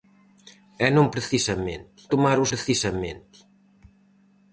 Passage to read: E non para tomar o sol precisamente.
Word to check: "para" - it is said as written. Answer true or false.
false